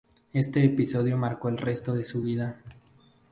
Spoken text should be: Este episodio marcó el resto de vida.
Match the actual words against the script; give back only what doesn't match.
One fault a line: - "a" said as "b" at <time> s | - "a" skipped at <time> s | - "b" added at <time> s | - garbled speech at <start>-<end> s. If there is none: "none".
- "su" added at 2.0 s